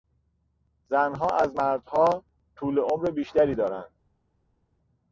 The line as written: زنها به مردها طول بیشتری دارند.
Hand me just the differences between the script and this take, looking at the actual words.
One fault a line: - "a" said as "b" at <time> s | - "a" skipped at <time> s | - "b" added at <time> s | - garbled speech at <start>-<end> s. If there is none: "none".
- "به" said as "از" at 1.3 s
- "عمر" added at 2.8 s